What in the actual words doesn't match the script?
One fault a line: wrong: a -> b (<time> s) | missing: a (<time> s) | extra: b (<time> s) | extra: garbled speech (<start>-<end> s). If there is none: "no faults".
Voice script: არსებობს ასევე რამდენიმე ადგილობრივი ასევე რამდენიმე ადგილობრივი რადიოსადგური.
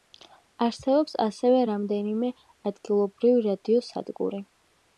missing: ასევე რამდენიმე ადგილობრივი (3.4 s)